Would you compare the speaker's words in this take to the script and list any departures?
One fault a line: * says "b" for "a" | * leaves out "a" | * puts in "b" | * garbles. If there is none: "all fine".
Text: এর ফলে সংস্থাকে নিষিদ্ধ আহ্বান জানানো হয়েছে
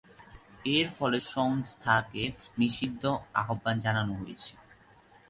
all fine